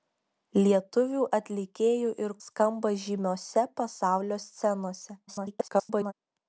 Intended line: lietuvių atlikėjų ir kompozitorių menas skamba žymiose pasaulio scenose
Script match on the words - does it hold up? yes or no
no